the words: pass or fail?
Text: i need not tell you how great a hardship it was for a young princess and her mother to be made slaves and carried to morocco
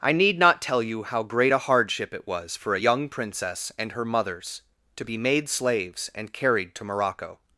fail